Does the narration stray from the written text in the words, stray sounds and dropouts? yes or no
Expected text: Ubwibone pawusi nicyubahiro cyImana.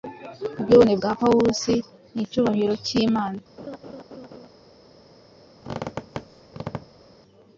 yes